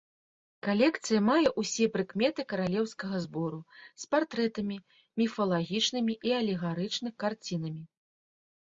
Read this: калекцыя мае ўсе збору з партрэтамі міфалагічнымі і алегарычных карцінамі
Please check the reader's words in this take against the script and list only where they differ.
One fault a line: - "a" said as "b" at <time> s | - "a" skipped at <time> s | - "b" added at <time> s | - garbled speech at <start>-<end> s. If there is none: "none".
- "прыкметы каралеўскага" added at 2.0 s